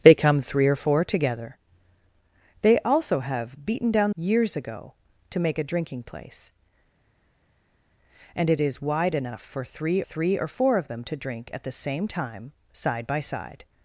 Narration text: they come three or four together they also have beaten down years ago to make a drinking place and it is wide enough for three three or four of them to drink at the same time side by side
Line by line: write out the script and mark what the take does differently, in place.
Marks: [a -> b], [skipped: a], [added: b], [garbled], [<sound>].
they come three or four together they also have beaten down years ago to make a drinking place and it is wide enough for three three or four of them to drink at the same time side by side